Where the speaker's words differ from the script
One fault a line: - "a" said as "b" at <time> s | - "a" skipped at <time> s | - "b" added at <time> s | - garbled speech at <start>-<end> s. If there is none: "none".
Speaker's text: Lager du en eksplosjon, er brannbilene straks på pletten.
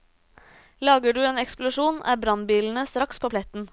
none